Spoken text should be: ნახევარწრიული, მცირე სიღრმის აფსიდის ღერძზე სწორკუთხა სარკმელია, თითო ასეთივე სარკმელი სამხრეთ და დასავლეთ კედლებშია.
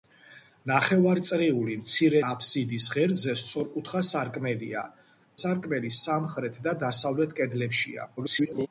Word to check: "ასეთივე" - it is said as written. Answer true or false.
false